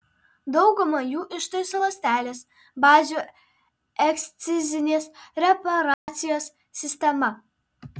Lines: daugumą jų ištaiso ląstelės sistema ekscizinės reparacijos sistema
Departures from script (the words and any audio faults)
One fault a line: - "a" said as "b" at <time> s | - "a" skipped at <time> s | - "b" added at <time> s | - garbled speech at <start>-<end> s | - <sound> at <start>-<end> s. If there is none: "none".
- "sistema" said as "bazių" at 2.9 s
- dropout at 5.9-6.1 s